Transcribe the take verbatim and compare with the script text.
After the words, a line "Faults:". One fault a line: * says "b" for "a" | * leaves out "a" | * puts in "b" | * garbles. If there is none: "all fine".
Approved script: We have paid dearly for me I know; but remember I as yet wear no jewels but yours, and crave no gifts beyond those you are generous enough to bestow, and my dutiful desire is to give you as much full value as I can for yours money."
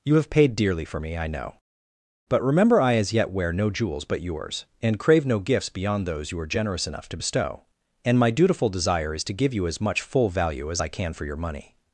You have paid dearly for me I know; but remember I as yet wear no jewels but yours, and crave no gifts beyond those you are generous enough to bestow, and my dutiful desire is to give you as much full value as I can for your money."
Faults:
* says "You" for "We"
* says "your" for "yours"